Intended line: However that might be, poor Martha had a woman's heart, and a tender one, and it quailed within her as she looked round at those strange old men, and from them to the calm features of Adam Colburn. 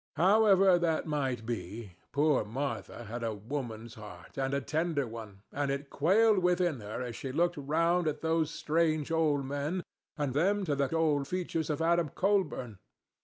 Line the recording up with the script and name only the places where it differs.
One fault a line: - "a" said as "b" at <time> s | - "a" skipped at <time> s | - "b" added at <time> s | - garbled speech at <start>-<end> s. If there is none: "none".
- "from" skipped at 10.3 s
- "calm" said as "old" at 10.9 s